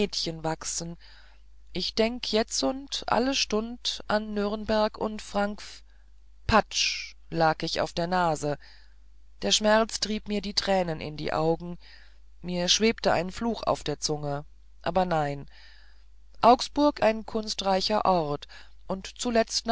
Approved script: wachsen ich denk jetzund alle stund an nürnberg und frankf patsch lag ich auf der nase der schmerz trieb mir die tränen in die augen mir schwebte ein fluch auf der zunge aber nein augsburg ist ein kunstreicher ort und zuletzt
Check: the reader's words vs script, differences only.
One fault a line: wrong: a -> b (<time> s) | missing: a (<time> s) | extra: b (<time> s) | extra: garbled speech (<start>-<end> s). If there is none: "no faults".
missing: ist (17.0 s)